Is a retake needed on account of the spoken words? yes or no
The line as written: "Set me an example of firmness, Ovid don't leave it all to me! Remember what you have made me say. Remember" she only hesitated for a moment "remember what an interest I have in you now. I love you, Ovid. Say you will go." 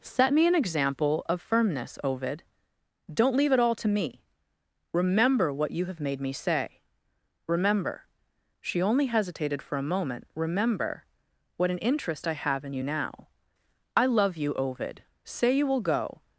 no